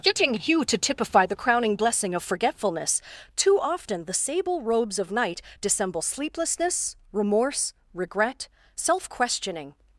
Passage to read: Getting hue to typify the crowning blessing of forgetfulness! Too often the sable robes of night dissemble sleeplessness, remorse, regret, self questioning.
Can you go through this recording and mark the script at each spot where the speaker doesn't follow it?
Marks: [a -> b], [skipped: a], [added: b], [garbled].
Getting hue to typify the crowning blessing of forgetfulness! Too often the sable robes of night dissemble sleeplessness, remorse, regret, self questioning.